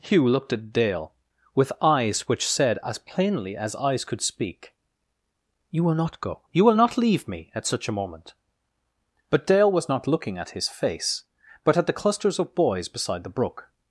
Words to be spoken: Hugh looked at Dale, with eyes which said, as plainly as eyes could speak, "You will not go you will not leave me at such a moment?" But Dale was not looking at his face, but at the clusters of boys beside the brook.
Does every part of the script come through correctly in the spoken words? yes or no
yes